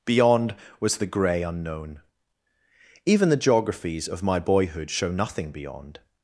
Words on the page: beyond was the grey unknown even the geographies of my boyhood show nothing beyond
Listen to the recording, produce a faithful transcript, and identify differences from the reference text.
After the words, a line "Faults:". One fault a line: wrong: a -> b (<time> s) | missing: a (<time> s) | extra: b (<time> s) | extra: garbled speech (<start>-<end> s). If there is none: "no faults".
beyond was the grey unknown even the geographies of my boyhood show nothing beyond
Faults:
no faults